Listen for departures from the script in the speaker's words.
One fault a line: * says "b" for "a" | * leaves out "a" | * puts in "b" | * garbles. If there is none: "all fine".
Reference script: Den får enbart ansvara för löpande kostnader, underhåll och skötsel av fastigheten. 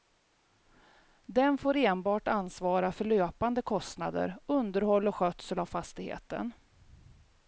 all fine